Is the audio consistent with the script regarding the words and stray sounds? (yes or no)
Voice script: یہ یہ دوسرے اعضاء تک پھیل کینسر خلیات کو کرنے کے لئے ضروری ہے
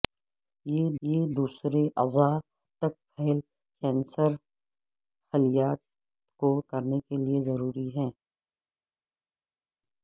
yes